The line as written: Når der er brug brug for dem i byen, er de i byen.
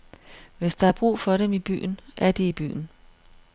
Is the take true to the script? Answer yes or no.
no